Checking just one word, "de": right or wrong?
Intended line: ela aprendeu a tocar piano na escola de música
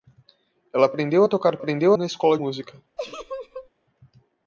wrong